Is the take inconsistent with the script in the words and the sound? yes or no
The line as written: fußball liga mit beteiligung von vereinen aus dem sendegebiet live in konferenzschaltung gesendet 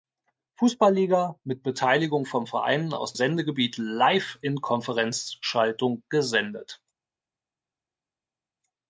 yes